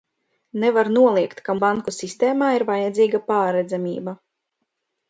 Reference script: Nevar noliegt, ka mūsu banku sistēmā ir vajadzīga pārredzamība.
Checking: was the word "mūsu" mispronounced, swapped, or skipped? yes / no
yes